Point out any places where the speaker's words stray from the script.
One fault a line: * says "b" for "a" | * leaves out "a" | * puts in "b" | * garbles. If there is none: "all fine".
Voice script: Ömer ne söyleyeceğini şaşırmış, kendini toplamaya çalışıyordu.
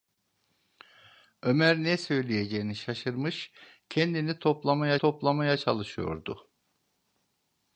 * puts in "toplamaya"